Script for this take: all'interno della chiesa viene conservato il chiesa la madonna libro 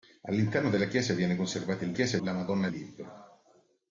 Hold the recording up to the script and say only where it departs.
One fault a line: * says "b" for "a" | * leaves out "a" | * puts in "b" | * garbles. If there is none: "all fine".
all fine